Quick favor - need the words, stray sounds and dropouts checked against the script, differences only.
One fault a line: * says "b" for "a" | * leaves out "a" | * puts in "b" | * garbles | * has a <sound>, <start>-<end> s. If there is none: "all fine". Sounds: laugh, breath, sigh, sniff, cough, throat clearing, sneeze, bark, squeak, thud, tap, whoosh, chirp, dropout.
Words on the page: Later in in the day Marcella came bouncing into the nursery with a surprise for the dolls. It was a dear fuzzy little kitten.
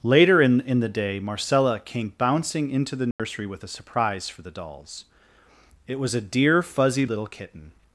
* has a dropout, 3.1-3.2 s